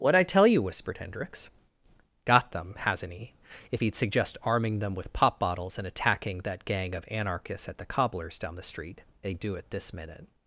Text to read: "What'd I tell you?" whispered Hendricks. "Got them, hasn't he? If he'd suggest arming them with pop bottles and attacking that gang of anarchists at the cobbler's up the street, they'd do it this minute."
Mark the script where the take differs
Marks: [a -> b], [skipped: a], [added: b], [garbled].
"What'd I tell you?" whispered Hendricks. "Got them, hasn't he? If he'd suggest arming them with pop bottles and attacking that gang of anarchists at the cobbler's [up -> down] the street, they'd do it this minute."